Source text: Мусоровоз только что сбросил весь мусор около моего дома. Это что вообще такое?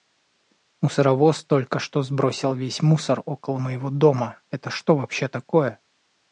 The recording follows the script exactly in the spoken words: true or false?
true